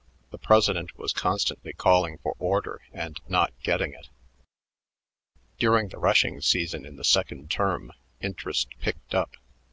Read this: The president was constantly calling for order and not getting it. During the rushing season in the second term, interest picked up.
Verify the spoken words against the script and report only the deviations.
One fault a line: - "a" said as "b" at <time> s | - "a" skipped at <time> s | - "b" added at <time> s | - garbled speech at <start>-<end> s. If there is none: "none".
none